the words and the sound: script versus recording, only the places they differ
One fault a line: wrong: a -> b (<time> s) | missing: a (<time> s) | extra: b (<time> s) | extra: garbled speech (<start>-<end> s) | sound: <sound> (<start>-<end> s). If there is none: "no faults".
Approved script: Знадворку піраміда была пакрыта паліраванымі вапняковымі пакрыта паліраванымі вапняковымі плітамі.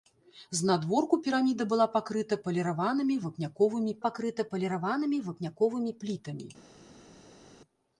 no faults